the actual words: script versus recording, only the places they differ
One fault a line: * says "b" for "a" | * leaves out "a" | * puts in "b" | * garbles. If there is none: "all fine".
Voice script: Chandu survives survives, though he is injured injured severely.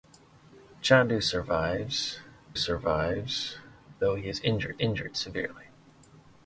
all fine